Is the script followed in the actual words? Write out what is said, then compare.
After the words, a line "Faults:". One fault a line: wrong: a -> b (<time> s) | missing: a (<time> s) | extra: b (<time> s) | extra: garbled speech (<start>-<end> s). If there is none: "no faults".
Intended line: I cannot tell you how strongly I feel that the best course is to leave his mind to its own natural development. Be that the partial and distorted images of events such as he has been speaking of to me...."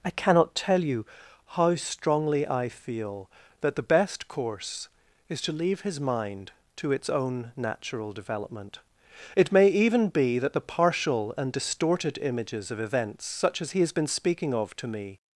I cannot tell you how strongly I feel that the best course is to leave his mind to its own natural development. It may even be that the partial and distorted images of events such as he has been speaking of to me...."
Faults:
extra: It may even (9.3 s)